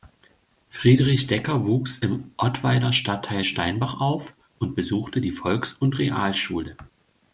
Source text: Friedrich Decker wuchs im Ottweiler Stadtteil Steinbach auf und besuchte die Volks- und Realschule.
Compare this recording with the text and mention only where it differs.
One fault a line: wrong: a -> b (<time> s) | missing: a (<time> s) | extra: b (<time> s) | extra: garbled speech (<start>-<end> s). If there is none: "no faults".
no faults